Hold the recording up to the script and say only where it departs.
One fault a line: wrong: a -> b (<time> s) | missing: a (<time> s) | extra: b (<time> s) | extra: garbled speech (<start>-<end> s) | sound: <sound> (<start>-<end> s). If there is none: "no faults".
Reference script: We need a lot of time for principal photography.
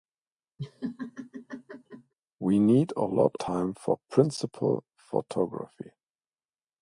sound: laugh (0.6-2.1 s)
missing: of (3.3 s)